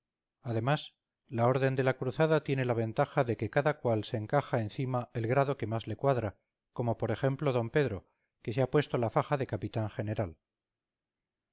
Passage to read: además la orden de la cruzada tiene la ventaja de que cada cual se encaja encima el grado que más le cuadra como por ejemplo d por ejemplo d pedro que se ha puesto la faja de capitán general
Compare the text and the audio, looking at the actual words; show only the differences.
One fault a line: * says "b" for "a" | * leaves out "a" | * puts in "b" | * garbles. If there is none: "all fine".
* leaves out "por ejemplo d"